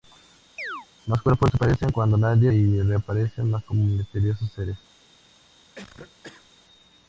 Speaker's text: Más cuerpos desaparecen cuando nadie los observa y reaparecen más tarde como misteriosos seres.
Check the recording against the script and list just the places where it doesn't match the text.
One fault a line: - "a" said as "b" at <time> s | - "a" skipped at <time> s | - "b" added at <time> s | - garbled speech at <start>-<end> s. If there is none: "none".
- "los observa" skipped at 2.5 s
- "tarde" skipped at 3.6 s